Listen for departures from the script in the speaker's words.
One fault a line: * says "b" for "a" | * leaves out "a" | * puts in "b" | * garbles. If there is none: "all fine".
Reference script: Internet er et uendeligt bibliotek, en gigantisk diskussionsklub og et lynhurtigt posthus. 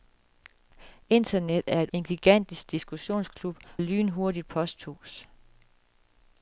* leaves out "uendeligt bibliotek"
* leaves out "og"